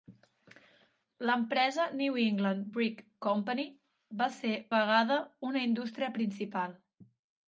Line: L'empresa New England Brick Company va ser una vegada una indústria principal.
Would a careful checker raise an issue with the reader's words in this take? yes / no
yes